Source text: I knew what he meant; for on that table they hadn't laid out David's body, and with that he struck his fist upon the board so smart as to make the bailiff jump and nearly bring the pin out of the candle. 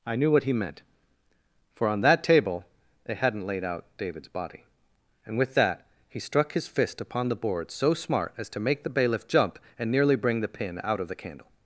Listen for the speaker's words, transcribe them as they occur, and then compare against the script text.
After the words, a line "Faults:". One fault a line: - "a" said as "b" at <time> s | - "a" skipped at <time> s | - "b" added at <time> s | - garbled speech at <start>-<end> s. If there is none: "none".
I knew what he meant; for on that table they hadn't laid out David's body, and with that he struck his fist upon the board so smart as to make the bailiff jump and nearly bring the pin out of the candle.
Faults:
none